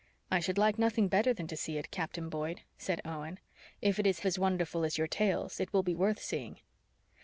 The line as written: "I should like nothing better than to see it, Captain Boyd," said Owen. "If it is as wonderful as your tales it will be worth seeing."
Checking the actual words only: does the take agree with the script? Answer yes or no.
yes